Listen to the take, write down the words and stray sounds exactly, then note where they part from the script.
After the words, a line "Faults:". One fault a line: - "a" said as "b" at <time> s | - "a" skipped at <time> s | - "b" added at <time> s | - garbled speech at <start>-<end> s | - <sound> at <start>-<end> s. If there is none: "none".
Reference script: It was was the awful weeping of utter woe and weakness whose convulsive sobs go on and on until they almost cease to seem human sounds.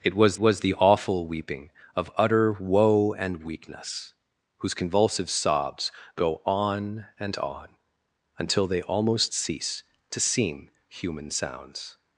It was was the awful weeping of utter woe and weakness whose convulsive sobs go on and on until they almost cease to seem human sounds.
Faults:
none